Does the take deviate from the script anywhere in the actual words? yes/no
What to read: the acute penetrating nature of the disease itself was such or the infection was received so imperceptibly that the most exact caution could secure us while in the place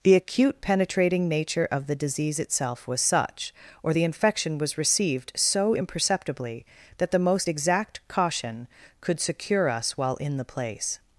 no